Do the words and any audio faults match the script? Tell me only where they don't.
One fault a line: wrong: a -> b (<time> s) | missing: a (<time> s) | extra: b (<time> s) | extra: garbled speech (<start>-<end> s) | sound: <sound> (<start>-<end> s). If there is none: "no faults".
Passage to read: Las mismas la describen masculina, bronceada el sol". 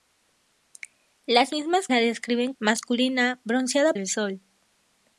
no faults